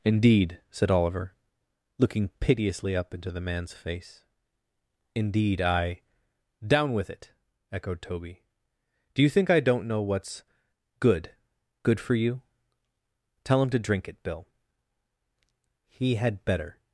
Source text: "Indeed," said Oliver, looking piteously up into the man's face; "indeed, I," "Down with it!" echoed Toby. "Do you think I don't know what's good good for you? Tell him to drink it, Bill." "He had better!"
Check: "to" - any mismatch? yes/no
no